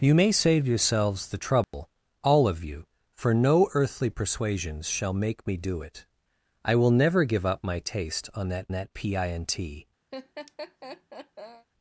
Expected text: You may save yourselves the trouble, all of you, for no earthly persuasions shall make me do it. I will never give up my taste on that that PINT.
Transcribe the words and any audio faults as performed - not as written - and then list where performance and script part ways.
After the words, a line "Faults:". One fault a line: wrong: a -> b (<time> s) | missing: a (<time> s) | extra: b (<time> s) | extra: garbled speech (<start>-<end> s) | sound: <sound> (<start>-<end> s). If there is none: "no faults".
You may save yourselves the trouble, all of you, for no earthly persuasions shall make me do it. I will never give up my taste on that that PINT.
Faults:
sound: dropout (1.6-1.7 s)
sound: laugh (10.1-11.7 s)